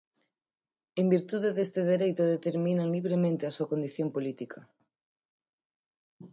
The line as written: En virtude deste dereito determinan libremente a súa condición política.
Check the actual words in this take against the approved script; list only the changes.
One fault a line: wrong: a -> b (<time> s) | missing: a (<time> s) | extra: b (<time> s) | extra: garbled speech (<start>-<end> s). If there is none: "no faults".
no faults